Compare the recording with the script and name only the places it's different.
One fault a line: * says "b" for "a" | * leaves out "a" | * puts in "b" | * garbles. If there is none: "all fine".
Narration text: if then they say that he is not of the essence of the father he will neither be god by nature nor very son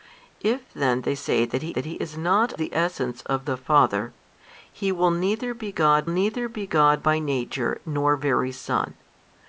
* puts in "that he"
* leaves out "of"
* puts in "neither be god"